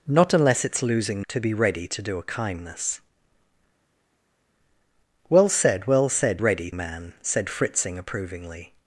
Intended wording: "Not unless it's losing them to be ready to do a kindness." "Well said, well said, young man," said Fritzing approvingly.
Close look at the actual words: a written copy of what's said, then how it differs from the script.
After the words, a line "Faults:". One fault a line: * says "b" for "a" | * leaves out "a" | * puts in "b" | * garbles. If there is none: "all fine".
"Not unless it's losing to be ready to do a kindness." "Well said, well said, ready man," said Fritzing approvingly.
Faults:
* leaves out "them"
* says "ready" for "young"